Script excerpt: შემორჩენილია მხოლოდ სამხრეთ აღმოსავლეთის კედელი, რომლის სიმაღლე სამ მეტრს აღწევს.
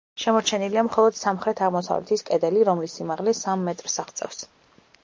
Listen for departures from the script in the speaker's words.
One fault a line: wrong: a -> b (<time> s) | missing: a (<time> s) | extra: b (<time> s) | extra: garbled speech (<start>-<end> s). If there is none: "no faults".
no faults